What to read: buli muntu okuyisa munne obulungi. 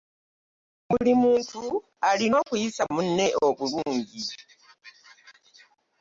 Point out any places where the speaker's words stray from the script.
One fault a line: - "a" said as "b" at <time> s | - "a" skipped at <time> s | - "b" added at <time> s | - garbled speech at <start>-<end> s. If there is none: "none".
- "alina" added at 2.1 s